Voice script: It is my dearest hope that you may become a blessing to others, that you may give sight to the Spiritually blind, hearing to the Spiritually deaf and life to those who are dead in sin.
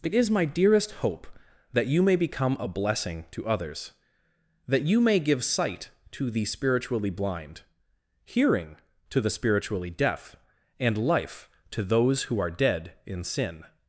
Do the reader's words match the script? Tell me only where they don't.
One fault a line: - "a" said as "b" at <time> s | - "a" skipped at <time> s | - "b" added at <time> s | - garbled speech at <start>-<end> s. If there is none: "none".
none